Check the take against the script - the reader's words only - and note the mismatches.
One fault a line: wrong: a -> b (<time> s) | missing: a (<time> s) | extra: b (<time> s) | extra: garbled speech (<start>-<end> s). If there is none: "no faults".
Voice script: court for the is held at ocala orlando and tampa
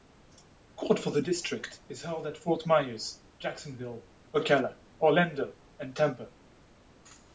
extra: district (1.2 s)
extra: fort myers jacksonville (2.4 s)